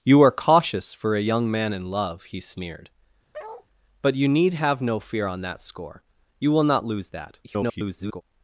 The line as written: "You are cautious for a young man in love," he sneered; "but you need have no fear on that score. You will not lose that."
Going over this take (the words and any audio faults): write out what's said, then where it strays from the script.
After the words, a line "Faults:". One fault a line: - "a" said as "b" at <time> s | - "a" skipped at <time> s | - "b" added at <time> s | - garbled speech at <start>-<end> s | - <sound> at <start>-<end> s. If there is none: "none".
"You are cautious for a young man in love," he sneered; "but you need have no fear on that score. You will not lose that." [garbled]
Faults:
- bark at 3.3-3.7 s
- garbled speech at 7.4-8.2 s